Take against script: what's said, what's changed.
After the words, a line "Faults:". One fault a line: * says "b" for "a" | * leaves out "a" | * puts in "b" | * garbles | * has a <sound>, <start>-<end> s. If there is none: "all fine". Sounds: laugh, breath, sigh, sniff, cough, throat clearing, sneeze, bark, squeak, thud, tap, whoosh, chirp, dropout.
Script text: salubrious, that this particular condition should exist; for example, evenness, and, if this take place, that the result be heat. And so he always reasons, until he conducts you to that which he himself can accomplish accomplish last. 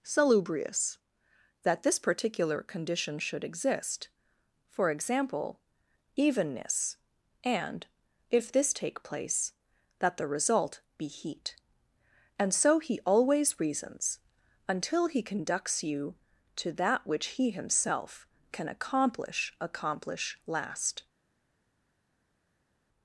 salubrious, that this particular condition should exist; for example, evenness, and, if this take place, that the result be heat. And so he always reasons, until he conducts you to that which he himself can accomplish accomplish last.
Faults:
all fine